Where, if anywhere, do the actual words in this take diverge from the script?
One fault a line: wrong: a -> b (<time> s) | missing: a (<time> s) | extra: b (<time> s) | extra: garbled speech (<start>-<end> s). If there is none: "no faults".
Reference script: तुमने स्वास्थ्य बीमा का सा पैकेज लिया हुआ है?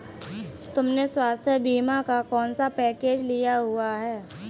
extra: कौन (2.2 s)